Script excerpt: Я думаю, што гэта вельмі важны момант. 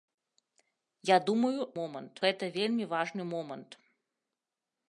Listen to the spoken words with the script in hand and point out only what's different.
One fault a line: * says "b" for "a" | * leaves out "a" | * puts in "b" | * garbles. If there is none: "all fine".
* says "момант" for "што"